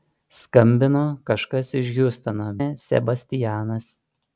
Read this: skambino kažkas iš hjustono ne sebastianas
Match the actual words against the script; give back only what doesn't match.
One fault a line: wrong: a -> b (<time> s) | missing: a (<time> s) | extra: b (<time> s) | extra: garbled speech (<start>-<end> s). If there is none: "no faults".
no faults